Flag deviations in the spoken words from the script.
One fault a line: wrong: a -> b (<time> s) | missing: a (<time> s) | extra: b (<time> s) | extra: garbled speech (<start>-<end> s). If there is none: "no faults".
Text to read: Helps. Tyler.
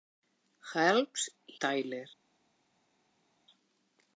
no faults